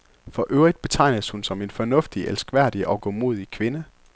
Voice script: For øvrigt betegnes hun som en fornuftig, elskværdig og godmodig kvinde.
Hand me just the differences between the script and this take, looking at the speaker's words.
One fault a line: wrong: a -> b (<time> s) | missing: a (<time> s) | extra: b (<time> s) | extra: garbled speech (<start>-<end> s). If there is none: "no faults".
no faults